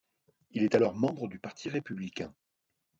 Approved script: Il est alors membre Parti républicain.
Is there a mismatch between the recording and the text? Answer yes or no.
yes